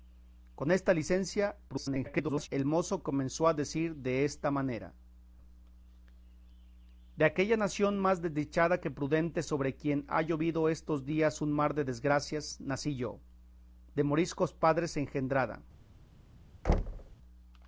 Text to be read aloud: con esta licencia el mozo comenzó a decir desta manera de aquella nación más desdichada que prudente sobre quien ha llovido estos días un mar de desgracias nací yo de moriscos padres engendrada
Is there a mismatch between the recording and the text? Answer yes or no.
yes